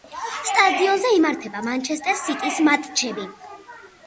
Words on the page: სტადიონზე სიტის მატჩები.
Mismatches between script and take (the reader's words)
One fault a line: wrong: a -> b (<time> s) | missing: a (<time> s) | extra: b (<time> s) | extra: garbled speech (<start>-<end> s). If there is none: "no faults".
extra: იმართება მანჩესტერ (1.2 s)